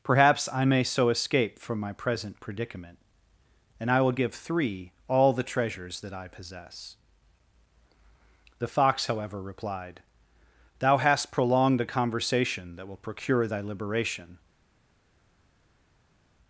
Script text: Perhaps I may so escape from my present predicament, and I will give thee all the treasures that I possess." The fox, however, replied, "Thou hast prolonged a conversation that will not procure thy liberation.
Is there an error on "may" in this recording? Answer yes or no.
no